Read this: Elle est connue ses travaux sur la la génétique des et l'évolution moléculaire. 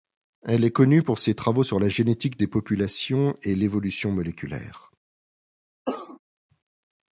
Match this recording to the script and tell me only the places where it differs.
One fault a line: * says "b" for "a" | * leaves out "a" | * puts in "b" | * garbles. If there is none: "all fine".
* puts in "pour"
* leaves out "la"
* puts in "populations"